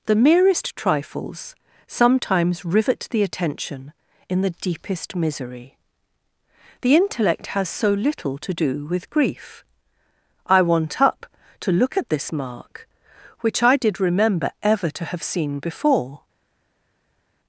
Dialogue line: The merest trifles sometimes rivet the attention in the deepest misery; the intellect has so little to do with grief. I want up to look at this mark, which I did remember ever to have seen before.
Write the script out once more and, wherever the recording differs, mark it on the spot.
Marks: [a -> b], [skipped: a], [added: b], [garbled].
The merest trifles sometimes rivet the attention in the deepest misery; the intellect has so little to do with grief. I want up to look at this mark, which I did remember ever to have seen before.